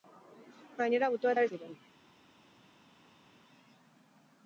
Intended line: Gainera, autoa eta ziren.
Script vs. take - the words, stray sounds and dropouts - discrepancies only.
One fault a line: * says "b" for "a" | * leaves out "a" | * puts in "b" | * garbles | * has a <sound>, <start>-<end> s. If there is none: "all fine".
all fine